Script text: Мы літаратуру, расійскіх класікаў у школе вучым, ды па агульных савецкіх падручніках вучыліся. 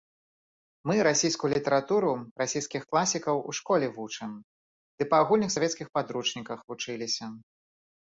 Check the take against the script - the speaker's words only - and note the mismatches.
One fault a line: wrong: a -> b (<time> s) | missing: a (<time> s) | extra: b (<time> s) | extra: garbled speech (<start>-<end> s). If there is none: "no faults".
extra: расійскую (1.1 s)